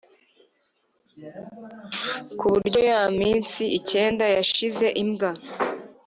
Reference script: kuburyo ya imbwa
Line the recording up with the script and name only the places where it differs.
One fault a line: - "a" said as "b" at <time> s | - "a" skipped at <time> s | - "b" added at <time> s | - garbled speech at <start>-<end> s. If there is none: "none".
- "minsi icyenda yashize" added at 3.2 s